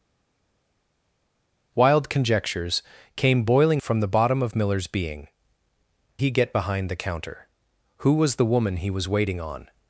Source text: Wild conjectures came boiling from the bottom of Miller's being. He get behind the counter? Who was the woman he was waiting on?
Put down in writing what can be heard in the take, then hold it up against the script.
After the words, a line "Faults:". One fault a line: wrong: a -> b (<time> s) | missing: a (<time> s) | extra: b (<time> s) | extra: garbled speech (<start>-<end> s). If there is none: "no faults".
Wild conjectures came boiling from the bottom of Miller's being. He get behind the counter? Who was the woman he was waiting on?
Faults:
no faults